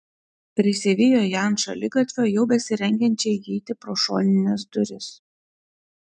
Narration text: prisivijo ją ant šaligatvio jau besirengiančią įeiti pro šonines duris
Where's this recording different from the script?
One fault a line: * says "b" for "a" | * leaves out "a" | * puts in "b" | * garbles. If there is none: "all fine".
all fine